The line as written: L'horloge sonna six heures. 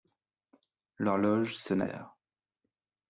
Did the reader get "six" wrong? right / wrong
wrong